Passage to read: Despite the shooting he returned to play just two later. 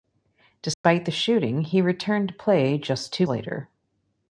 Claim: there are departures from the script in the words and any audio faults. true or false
true